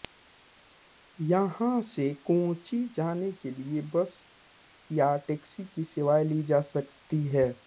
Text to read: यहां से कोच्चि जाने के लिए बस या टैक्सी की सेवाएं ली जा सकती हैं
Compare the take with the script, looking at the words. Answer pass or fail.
pass